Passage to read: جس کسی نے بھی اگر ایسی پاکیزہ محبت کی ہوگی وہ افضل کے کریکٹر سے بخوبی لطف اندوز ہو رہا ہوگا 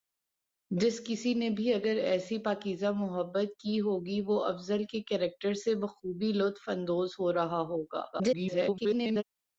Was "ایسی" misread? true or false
false